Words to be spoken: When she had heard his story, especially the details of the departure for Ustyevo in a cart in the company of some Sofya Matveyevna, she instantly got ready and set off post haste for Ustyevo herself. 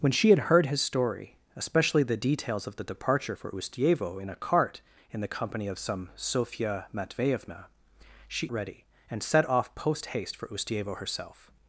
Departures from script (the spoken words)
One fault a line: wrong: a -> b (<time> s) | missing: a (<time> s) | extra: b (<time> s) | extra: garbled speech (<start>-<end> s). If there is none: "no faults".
missing: instantly got (8.5 s)